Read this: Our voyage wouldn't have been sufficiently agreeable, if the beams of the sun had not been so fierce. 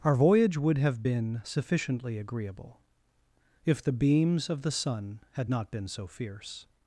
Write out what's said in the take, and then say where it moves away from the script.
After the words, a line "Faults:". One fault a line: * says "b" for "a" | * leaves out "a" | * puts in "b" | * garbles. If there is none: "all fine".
Our voyage would have been sufficiently agreeable, if the beams of the sun had not been so fierce.
Faults:
* says "would" for "wouldn't"